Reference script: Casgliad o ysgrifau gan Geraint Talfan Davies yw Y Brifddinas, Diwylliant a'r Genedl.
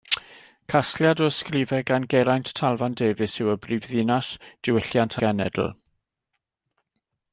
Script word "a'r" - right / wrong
wrong